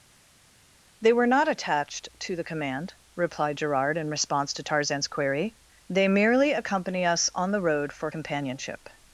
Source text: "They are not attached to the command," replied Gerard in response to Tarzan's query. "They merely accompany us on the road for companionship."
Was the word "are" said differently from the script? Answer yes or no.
yes